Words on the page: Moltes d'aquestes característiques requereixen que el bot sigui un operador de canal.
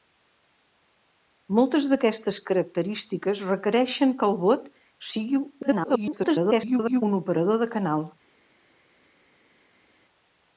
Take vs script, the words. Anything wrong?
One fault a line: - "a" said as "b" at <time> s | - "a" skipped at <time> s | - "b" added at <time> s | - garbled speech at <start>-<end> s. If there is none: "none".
- garbled speech at 5.6-7.0 s